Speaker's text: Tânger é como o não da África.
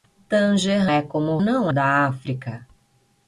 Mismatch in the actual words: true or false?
false